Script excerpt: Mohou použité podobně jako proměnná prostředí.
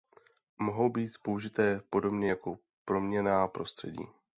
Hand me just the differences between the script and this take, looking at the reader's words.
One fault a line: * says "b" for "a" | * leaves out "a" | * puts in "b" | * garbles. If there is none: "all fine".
* puts in "být"